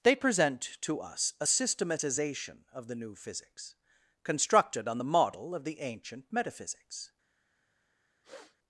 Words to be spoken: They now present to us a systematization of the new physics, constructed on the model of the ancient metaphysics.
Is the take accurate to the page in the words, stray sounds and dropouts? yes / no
no